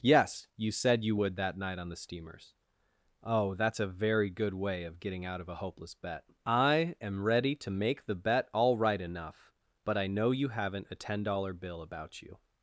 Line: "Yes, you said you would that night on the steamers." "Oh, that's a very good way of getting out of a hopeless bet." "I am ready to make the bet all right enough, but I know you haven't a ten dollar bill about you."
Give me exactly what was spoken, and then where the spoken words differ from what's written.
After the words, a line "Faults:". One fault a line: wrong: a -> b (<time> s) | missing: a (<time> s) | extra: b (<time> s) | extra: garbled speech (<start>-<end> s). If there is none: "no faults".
"Yes, you said you would that night on the steamers." "Oh, that's a very good way of getting out of a hopeless bet." "I am ready to make the bet all right enough, but I know you haven't a ten dollar bill about you."
Faults:
no faults